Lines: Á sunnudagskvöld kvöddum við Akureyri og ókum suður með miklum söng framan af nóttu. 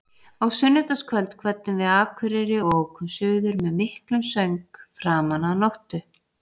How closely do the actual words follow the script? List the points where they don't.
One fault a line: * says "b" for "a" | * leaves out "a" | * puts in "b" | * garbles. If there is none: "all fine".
all fine